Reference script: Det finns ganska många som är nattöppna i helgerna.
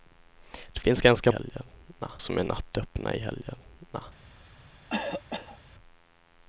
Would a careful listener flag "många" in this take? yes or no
yes